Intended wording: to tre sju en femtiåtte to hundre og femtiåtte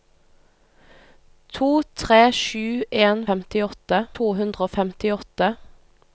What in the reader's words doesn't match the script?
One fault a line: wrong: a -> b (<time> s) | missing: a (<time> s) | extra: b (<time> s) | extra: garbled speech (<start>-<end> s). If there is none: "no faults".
no faults